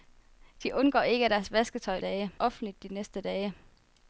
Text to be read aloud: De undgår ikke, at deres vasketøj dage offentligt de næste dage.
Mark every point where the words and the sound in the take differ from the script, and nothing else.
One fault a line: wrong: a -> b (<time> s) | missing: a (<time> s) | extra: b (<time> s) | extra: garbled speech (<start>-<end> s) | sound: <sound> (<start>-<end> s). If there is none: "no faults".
no faults